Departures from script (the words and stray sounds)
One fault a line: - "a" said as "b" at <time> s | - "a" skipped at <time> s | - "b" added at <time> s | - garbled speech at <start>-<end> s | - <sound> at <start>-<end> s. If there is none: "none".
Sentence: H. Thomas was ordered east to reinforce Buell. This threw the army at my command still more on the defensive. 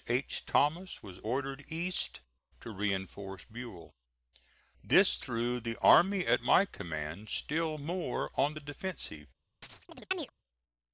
- chirp at 9.6-10.3 s